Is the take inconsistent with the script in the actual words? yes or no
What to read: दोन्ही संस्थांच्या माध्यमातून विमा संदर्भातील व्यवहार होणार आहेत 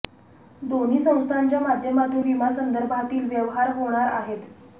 no